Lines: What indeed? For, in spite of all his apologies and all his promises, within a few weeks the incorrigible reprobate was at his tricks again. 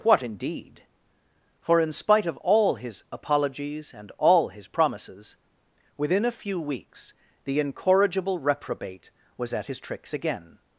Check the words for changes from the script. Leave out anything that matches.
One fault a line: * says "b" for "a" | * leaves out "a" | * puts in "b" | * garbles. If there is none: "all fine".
all fine